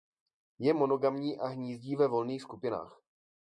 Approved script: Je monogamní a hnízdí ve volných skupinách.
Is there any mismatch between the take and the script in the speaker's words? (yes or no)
no